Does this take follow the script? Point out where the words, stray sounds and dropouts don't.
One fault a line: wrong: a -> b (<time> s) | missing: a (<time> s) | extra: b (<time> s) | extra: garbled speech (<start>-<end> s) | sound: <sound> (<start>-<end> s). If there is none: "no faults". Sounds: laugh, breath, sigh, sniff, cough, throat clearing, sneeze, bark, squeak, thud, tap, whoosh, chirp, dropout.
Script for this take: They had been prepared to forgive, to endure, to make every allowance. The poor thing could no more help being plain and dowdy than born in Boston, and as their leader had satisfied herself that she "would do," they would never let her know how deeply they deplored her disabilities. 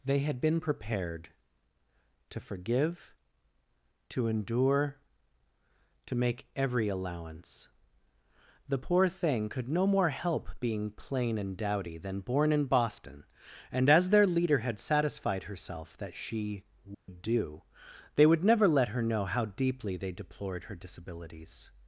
sound: dropout (16.9-17.1 s)